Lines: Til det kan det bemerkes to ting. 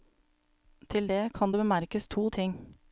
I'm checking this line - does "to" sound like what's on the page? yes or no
yes